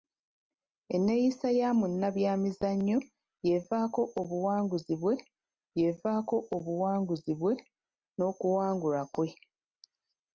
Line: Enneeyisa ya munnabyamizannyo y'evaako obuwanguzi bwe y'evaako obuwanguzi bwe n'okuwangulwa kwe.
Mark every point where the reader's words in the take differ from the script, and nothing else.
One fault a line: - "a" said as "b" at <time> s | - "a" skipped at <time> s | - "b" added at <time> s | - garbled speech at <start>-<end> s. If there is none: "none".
none